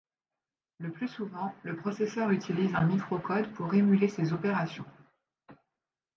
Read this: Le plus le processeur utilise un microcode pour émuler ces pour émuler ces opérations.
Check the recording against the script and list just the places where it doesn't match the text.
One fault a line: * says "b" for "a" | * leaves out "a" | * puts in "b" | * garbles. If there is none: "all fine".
* puts in "souvent"
* leaves out "pour émuler ces"